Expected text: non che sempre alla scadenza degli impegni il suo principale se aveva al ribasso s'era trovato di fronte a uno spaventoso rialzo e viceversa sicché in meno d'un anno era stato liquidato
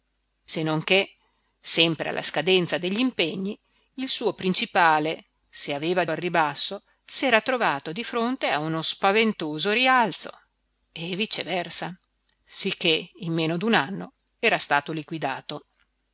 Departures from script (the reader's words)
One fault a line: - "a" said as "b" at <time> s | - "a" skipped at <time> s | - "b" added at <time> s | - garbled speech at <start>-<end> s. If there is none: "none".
none